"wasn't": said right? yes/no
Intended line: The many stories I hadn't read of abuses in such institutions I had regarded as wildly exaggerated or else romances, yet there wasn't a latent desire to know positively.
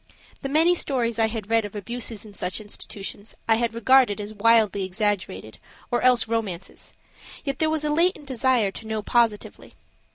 no